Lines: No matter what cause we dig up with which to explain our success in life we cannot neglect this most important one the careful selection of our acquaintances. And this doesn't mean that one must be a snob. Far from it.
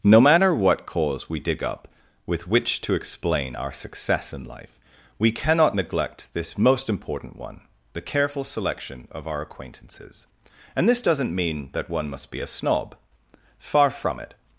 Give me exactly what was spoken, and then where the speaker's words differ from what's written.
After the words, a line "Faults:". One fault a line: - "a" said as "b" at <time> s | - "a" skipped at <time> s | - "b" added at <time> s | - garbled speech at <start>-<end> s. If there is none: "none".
No matter what cause we dig up with which to explain our success in life we cannot neglect this most important one the careful selection of our acquaintances. And this doesn't mean that one must be a snob. Far from it.
Faults:
none